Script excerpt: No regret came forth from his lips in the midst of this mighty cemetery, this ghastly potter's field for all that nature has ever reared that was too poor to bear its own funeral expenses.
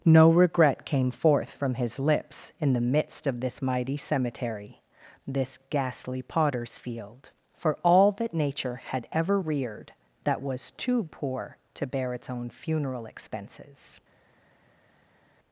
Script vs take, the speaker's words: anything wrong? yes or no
yes